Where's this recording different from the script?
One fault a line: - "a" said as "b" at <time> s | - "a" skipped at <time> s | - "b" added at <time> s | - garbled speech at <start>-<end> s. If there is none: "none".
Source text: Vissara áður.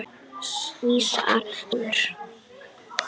none